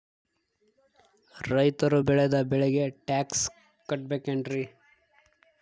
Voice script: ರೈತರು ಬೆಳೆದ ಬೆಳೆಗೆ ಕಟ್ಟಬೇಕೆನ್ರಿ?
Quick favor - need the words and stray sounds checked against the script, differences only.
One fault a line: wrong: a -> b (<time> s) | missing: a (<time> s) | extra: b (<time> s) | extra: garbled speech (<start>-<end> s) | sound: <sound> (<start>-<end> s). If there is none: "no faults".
extra: ಟ್ಯಾಕ್ಸ್ (3.1 s)